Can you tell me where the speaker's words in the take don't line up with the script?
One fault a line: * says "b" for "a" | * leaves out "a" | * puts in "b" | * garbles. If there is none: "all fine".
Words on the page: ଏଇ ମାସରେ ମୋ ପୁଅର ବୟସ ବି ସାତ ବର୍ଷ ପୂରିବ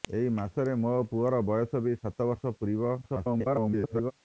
* garbles